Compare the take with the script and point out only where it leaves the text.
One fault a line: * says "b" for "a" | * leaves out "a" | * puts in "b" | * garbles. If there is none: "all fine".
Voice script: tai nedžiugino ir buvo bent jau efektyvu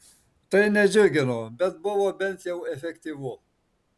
* says "bet" for "ir"